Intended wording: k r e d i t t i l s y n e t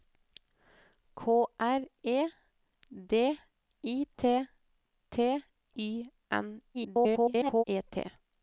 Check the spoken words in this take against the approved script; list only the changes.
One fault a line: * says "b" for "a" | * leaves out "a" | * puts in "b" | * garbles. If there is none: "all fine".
* leaves out "i l s"
* garbles